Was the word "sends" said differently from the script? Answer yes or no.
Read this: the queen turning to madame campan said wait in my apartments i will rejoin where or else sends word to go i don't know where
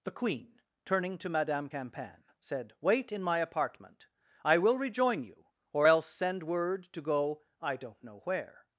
yes